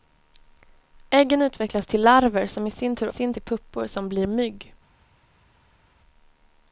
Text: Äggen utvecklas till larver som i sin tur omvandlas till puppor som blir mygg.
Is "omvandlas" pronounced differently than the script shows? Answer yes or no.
yes